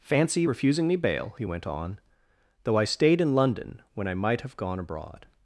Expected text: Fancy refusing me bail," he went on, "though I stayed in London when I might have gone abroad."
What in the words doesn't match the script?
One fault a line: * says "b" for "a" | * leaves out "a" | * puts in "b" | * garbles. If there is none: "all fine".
all fine